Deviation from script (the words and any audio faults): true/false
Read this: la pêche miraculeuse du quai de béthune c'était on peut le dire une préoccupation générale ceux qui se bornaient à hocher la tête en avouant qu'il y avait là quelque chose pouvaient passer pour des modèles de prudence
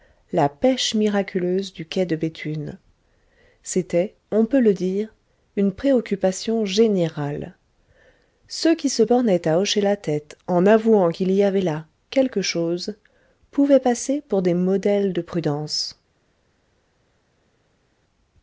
false